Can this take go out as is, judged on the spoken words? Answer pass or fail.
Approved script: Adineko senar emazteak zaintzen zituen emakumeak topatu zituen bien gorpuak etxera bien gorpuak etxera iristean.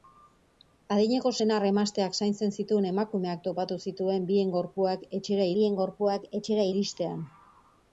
pass